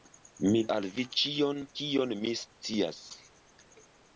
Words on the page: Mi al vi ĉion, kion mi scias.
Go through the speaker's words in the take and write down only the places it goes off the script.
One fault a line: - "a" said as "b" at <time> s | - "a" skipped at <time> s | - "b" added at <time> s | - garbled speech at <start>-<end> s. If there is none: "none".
none